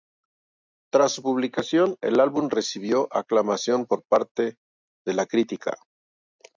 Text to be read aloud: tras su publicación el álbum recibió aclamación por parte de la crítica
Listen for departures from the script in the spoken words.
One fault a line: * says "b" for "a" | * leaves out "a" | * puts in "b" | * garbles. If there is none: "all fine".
all fine